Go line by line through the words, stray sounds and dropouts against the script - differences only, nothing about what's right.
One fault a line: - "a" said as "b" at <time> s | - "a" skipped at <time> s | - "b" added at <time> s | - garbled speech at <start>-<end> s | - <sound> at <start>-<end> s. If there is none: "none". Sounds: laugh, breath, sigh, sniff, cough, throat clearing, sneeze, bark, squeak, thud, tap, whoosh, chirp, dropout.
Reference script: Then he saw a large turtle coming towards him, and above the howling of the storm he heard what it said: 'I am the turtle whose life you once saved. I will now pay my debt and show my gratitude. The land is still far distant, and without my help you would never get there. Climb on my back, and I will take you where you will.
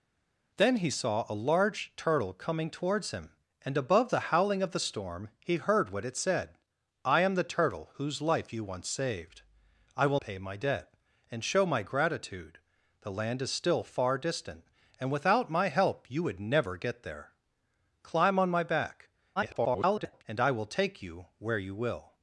- "now" skipped at 10.2 s
- garbled speech at 19.4-20.2 s